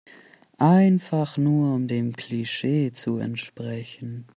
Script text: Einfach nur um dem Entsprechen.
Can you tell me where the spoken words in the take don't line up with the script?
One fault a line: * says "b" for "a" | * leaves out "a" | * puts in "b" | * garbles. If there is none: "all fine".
* puts in "Klischee zu"